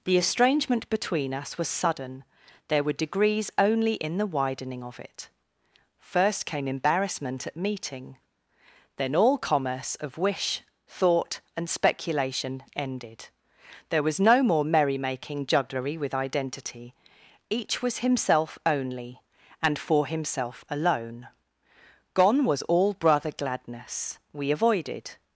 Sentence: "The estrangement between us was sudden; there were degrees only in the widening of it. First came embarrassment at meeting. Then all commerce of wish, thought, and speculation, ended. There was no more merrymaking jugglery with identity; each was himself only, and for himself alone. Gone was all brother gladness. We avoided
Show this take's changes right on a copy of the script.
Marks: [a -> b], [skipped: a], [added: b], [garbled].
"The estrangement between us was sudden; there were degrees only in the widening of it. First came embarrassment at meeting. Then all commerce of wish, thought, and speculation, ended. There was no more merrymaking jugglery with identity; each was himself only, and for himself alone. Gone was all brother gladness. We avoided